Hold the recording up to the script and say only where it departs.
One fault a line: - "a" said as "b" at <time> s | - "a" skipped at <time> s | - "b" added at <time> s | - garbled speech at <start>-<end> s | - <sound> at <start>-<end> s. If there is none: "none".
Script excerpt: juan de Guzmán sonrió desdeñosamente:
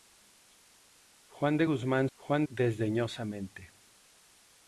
- "sonrió" said as "juan" at 2.1 s